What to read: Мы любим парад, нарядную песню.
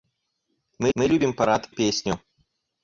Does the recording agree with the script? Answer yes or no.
no